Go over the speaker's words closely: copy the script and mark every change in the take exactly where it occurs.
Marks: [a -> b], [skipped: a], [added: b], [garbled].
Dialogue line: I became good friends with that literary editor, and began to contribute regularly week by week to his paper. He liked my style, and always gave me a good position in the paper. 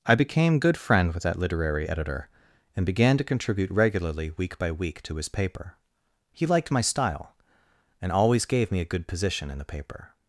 I became good [friends -> friend] with that literary editor, and began to contribute regularly week by week to his paper. He liked my style, and always gave me a good position in the paper.